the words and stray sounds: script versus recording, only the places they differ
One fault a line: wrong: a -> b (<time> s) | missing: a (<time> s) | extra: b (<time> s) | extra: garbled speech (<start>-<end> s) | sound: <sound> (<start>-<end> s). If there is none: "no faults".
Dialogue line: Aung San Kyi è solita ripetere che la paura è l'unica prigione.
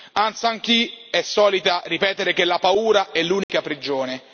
sound: dropout (3.4-3.5 s)